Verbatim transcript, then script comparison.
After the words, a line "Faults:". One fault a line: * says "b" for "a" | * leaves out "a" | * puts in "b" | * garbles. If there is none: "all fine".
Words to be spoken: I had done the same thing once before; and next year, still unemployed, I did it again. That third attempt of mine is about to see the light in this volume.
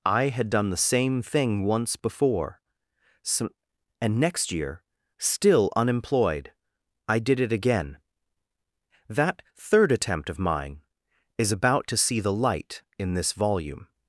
I had done the same thing once before; so and next year, still unemployed, I did it again. That third attempt of mine is about to see the light in this volume.
Faults:
* puts in "so"